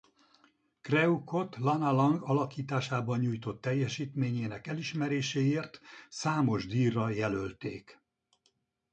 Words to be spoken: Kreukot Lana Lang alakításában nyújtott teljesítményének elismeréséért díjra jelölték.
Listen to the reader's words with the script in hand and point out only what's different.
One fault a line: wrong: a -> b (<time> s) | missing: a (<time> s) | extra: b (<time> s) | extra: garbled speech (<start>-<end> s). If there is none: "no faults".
extra: számos (6.1 s)